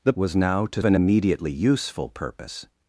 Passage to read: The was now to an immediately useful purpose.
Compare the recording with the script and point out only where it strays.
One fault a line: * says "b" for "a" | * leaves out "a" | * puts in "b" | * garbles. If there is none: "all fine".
all fine